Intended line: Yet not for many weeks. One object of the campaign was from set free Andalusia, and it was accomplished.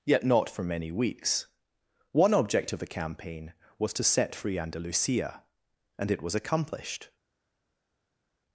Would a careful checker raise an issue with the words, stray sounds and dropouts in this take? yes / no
yes